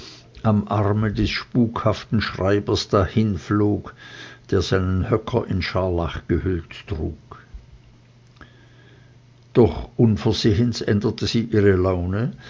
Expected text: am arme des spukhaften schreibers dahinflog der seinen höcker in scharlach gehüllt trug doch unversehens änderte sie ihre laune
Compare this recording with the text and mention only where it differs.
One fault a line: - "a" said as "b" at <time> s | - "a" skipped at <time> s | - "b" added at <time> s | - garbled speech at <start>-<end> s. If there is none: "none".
none